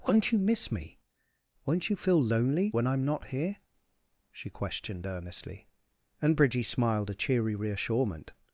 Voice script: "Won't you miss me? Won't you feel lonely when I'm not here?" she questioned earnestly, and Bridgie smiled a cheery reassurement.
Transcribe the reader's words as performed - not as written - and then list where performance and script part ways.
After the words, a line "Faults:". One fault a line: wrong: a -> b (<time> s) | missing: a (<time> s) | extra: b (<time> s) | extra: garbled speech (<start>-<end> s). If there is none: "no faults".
"Won't you miss me? Won't you feel lonely when I'm not here?" she questioned earnestly, and Bridgie smiled a cheery reassurement.
Faults:
no faults